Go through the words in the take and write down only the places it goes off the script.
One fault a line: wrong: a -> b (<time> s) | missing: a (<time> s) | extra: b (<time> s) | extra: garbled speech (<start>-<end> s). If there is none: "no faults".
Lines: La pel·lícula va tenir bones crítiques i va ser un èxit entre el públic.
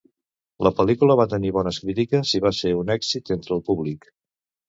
no faults